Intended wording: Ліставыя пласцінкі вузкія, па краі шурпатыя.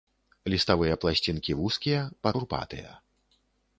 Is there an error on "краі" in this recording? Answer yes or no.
yes